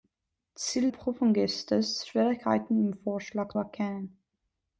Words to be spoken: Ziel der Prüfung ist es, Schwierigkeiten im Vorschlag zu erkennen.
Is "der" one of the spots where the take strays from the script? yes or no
yes